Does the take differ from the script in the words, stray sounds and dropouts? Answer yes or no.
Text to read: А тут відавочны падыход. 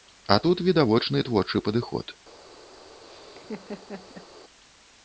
yes